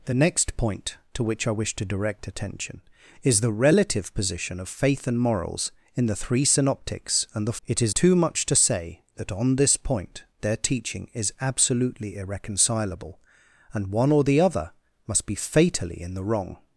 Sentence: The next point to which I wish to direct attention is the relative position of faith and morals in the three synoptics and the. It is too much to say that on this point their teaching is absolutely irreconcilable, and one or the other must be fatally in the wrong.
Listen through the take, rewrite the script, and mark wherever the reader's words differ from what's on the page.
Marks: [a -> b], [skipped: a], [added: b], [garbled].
The next point to which I wish to direct attention is the relative position of faith and morals in the three synoptics and the. It is too much to say that on this point their teaching is absolutely irreconcilable, and one or the other must be fatally in the wrong.